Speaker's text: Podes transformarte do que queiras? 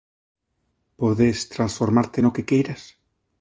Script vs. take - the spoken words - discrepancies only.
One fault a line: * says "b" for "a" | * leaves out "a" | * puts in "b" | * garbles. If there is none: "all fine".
* says "no" for "do"